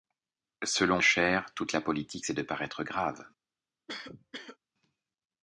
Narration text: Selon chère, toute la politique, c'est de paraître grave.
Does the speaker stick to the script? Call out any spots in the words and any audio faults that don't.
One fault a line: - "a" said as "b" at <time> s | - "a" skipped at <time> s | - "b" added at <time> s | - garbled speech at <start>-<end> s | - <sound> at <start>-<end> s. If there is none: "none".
- cough at 3.9-4.6 s